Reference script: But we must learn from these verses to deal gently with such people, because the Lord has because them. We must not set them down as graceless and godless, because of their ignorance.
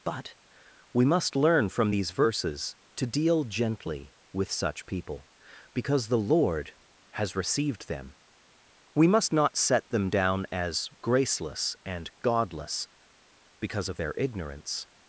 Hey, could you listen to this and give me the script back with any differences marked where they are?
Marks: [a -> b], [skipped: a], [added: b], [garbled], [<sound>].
But we must learn from these verses to deal gently with such people, because the Lord has [because -> received] them. We must not set them down as graceless and godless, because of their ignorance.